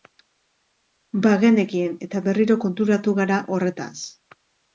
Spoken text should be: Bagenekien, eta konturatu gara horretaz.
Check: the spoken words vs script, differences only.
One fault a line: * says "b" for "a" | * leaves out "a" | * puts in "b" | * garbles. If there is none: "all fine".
* puts in "berriro"